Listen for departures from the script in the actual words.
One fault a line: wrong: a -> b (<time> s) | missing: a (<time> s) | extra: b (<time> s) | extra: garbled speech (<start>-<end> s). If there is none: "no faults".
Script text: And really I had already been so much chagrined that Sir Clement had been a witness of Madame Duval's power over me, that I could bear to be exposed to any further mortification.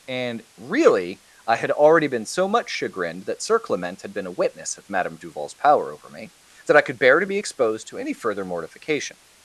no faults